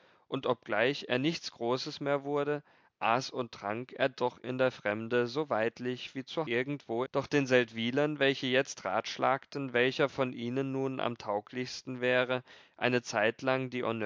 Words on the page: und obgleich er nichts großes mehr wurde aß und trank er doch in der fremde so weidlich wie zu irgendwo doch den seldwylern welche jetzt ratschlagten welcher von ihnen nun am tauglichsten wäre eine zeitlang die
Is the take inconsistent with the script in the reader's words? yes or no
no